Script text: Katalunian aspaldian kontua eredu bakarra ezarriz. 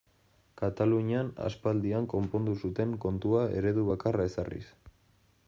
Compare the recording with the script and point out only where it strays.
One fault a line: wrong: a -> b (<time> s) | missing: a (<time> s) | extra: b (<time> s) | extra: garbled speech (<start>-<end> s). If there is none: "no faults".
extra: konpondu zuten (2.1 s)